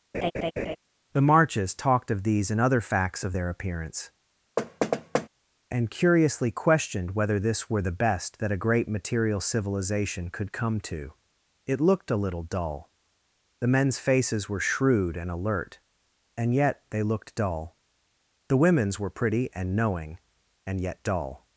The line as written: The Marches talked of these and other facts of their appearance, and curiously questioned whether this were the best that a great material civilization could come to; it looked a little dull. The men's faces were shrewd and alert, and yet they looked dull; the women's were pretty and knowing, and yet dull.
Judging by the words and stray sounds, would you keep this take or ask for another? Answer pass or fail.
fail